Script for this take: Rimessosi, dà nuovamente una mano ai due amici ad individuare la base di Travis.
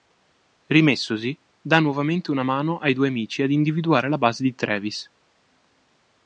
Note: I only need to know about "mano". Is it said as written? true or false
true